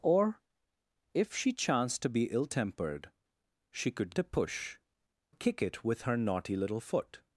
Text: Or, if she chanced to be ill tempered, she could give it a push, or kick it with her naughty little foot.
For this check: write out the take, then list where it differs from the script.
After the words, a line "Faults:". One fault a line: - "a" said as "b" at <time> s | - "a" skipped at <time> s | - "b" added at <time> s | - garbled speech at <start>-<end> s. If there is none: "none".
Or, if she chanced to be ill tempered, she could a push, kick it with her naughty little foot.
Faults:
- "give it" skipped at 4.2 s
- "or" skipped at 4.8 s